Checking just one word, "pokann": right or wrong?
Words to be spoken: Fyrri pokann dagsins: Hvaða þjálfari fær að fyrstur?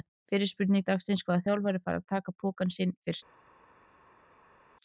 wrong